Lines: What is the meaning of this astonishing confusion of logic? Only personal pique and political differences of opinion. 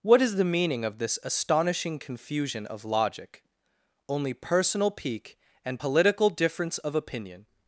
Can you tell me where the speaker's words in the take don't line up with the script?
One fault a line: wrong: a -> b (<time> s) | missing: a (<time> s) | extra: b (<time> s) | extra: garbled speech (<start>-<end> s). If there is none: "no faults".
wrong: differences -> difference (6.3 s)